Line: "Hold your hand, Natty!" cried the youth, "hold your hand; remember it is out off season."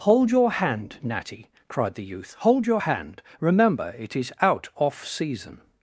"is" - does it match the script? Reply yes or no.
yes